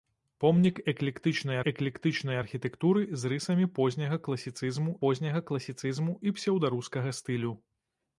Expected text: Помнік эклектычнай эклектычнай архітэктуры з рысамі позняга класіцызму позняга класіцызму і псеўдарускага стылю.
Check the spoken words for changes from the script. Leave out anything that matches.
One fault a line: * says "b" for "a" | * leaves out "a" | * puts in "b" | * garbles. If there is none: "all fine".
all fine